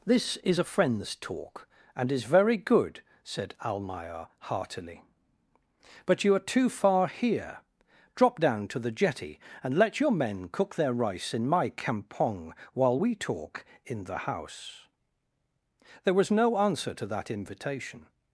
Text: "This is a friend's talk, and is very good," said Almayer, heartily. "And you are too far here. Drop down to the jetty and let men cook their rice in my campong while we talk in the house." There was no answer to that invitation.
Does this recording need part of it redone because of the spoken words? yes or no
yes